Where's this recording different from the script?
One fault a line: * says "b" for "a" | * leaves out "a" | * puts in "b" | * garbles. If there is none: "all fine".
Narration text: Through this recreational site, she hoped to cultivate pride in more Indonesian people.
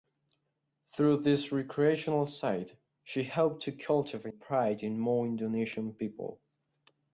all fine